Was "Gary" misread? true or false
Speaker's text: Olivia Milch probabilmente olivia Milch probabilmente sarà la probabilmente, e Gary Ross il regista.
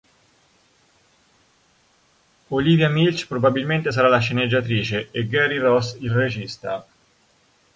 false